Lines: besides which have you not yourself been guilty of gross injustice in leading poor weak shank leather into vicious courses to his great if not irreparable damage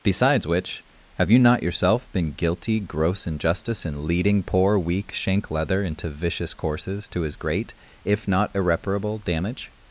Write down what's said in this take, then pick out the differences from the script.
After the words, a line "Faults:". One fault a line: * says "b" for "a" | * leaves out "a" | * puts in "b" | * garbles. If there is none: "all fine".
besides which have you not yourself been guilty gross injustice in leading poor weak shank leather into vicious courses to his great if not irreparable damage
Faults:
* leaves out "of"